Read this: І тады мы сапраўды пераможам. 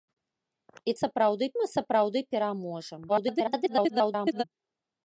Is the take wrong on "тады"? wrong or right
wrong